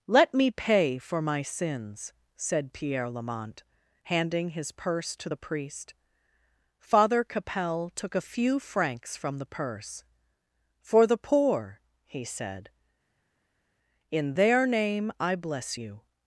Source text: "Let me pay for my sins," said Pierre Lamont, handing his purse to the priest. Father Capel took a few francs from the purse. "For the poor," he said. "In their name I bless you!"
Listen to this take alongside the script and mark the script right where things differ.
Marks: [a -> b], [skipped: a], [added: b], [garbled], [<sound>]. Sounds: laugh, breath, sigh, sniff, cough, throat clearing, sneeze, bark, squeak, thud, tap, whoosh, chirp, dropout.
"Let me pay for my sins," said Pierre Lamont, handing his purse to the priest. Father Capel took a few francs from the purse. "For the poor," he said. "In their name I bless you!"